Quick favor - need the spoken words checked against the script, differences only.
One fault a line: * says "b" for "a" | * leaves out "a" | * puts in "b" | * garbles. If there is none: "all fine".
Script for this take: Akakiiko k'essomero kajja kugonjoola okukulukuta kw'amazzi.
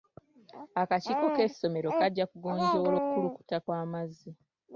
all fine